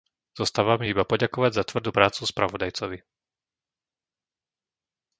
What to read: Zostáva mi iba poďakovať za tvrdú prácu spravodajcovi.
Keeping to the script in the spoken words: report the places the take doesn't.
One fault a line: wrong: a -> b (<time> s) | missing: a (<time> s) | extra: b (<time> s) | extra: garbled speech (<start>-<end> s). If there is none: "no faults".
no faults